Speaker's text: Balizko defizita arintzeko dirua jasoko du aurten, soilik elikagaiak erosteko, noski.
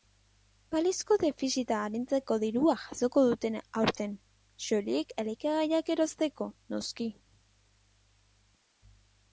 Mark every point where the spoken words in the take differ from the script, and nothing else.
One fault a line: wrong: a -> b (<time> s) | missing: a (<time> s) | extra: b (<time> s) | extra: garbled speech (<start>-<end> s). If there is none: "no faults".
wrong: du -> dute (3.3 s)